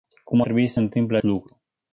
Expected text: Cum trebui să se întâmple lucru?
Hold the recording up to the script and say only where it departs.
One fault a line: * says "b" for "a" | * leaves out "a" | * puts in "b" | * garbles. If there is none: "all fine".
all fine